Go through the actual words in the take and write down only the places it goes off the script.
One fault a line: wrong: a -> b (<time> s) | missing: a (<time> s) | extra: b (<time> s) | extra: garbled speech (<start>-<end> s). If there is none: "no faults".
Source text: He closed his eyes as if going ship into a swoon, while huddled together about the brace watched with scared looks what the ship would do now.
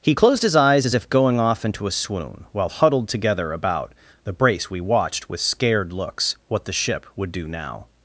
wrong: ship -> off (1.4 s)
extra: we (4.7 s)